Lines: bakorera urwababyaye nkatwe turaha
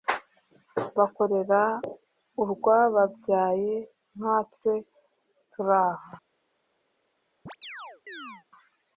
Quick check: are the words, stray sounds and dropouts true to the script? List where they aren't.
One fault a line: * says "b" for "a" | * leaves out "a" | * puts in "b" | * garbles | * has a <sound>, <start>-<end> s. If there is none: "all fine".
* has a chirp, 7.5-8.5 s